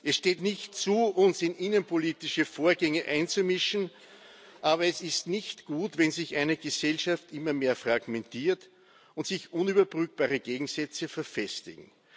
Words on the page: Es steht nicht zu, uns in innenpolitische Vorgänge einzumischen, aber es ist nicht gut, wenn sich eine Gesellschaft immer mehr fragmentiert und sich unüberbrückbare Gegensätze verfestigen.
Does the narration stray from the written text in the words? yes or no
no